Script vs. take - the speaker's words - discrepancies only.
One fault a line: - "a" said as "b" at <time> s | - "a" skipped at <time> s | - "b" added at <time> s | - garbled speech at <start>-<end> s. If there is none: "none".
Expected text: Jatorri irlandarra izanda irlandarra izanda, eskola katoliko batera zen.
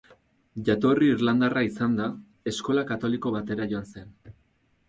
- "irlandarra izanda" skipped at 2.1 s
- "joan" added at 3.8 s